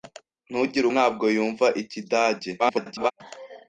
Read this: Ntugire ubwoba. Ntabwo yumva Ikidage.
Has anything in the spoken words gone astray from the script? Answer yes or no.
yes